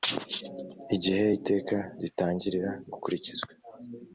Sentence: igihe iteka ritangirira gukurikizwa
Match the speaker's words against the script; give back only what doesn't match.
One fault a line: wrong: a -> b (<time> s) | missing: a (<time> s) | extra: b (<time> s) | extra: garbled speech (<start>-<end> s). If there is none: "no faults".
no faults